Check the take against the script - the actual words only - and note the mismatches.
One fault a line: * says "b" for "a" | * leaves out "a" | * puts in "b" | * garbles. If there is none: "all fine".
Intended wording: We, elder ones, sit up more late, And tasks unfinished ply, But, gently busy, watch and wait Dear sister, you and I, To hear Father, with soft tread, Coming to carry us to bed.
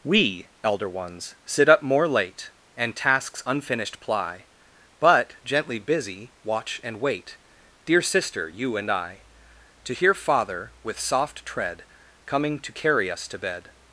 all fine